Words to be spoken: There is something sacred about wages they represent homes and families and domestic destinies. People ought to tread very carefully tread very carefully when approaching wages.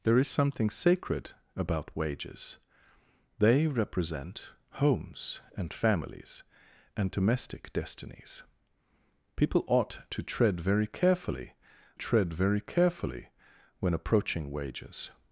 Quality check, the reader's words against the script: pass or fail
pass